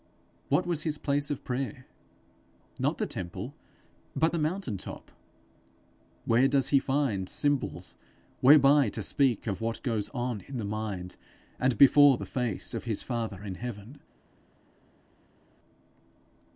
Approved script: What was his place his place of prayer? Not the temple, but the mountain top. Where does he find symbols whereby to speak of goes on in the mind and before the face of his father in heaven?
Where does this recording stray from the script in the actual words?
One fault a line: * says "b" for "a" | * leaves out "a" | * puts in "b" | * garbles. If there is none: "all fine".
* leaves out "his place"
* puts in "what"